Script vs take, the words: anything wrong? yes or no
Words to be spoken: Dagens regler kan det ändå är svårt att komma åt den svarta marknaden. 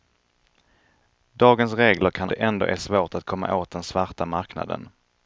no